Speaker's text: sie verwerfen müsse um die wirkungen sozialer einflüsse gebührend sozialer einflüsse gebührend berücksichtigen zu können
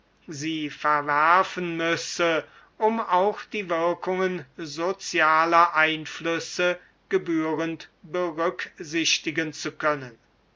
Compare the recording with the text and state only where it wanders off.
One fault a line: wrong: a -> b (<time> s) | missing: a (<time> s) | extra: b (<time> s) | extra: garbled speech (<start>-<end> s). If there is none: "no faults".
extra: auch (3.0 s)
missing: sozialer einflüsse gebührend (7.9 s)